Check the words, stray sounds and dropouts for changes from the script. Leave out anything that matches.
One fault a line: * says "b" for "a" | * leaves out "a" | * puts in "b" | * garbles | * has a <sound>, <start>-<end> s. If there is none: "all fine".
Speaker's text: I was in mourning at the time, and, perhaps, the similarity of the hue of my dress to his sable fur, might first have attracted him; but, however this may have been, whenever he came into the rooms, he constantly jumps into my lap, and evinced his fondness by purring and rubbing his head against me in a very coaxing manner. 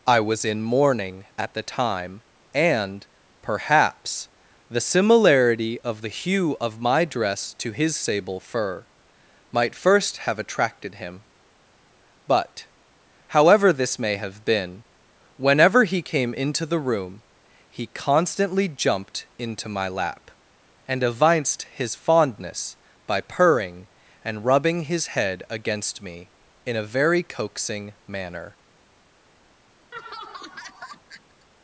* says "room" for "rooms"
* says "jumped" for "jumps"
* has a laugh, 29.9-31.5 s